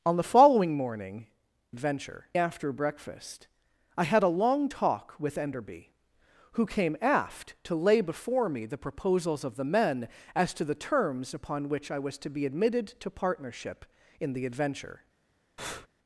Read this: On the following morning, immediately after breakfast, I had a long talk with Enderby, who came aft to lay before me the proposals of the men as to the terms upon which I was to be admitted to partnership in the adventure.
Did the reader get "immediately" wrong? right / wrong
wrong